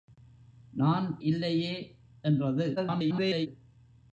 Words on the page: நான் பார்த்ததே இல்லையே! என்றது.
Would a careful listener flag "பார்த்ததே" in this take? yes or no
yes